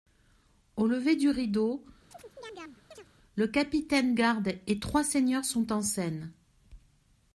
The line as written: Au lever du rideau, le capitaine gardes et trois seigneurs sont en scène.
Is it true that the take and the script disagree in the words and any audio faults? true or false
true